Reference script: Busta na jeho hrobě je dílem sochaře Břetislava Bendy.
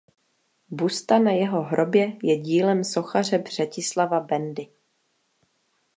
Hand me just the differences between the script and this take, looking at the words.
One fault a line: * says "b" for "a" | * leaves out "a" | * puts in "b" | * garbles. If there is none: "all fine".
all fine